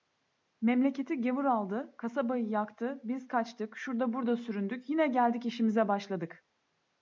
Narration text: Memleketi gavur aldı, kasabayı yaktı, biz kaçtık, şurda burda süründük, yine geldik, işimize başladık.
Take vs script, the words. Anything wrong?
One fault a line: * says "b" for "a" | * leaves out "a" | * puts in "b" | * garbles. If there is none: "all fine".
all fine